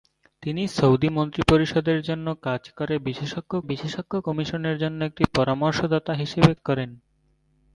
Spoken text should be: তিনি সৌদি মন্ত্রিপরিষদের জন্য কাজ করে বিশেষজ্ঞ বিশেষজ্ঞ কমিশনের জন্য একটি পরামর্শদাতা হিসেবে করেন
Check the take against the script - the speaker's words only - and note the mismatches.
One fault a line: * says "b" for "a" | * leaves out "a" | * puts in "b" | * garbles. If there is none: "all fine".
all fine